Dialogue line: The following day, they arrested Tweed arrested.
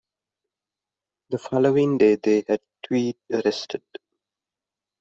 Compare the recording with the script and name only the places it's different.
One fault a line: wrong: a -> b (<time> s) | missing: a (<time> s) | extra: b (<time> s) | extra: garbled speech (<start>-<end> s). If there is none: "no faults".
wrong: arrested -> had (2.5 s)